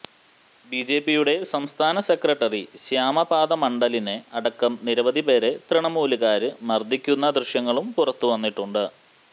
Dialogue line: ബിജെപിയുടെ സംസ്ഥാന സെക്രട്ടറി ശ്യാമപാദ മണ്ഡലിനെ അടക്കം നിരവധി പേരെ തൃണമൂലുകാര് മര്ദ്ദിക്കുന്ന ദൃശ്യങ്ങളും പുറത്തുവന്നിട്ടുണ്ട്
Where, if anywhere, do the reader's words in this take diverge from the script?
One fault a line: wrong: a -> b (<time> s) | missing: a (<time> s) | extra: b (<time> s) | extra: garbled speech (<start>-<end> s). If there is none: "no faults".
no faults